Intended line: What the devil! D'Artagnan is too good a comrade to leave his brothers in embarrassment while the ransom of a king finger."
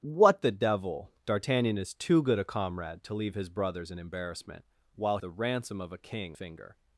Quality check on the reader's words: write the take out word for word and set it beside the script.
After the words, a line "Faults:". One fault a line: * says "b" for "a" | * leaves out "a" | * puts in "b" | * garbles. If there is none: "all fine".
What the devil! D'Artagnan is too good a comrade to leave his brothers in embarrassment while the ransom of a king finger."
Faults:
all fine